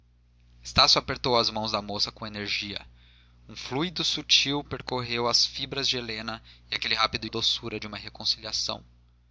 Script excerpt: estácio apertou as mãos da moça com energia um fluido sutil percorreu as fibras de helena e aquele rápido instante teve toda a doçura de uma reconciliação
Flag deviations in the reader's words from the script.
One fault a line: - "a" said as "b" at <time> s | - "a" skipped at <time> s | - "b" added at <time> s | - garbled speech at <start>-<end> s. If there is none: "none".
- "instante teve toda" skipped at 7.3 s